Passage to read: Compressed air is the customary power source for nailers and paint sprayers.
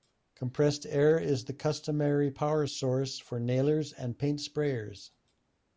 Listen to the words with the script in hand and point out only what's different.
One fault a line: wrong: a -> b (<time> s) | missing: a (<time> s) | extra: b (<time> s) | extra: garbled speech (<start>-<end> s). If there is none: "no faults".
no faults